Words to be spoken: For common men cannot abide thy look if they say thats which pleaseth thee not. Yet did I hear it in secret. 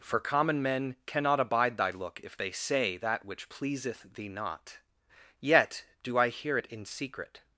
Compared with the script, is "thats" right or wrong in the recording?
wrong